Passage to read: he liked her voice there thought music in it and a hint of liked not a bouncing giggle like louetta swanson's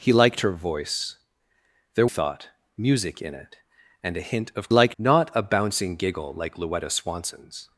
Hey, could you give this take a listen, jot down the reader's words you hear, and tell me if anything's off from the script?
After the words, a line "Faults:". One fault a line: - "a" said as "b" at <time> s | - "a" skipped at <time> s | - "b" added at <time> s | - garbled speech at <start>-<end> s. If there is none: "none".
he liked her voice there thought music in it and a hint of liked not a bouncing giggle like louetta swanson's
Faults:
none